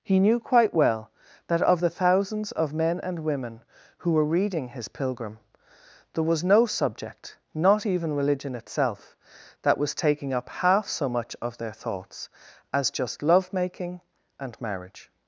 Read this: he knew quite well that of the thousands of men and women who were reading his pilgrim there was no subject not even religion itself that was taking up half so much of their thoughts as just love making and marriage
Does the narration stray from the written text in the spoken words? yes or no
no